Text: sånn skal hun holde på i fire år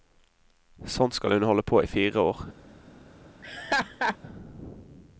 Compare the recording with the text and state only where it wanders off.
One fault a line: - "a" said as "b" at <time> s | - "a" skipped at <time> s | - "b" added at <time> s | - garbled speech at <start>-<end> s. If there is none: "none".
none